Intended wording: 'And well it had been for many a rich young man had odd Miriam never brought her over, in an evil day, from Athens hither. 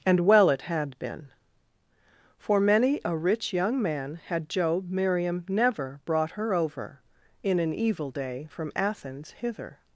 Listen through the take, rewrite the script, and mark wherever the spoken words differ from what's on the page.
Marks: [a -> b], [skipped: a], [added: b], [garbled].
'And well it had been for many a rich young man had [odd -> job] Miriam never brought her over, in an evil day, from Athens hither.